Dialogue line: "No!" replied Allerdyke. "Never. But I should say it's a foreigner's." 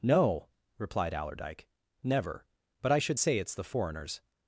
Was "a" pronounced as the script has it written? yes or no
no